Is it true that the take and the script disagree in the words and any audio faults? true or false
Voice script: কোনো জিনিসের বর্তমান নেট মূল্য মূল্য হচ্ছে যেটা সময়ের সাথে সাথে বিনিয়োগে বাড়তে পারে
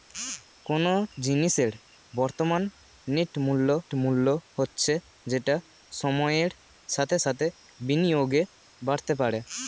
false